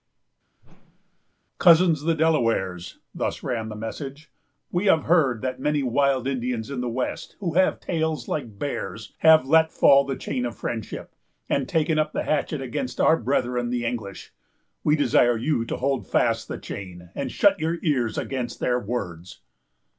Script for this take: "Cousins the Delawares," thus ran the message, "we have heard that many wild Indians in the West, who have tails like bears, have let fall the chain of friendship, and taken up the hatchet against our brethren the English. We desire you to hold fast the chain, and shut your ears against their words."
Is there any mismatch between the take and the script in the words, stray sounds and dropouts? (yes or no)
yes